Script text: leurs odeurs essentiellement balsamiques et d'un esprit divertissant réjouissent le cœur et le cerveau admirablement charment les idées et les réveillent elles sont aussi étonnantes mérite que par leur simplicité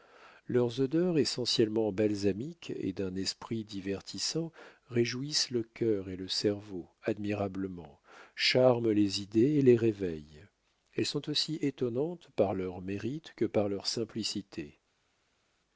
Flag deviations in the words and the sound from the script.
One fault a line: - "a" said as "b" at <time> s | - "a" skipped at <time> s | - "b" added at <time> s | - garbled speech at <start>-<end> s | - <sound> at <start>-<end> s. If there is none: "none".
- "par leur" added at 12.3 s